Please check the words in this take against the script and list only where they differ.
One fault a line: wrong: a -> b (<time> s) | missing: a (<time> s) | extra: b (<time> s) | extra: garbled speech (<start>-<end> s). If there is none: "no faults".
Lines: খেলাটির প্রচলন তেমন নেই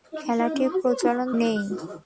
missing: তেমন (1.3 s)